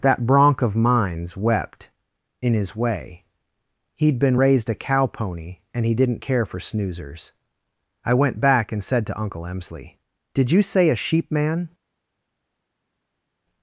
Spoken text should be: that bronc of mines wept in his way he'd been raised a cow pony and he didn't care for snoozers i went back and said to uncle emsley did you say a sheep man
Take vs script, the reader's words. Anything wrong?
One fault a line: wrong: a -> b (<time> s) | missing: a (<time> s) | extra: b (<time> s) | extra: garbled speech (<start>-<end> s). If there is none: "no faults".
no faults